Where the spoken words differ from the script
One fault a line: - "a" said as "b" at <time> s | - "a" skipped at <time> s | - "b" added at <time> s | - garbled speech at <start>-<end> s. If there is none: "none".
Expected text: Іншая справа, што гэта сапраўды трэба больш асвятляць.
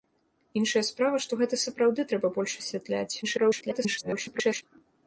- garbled speech at 3.2-4.6 s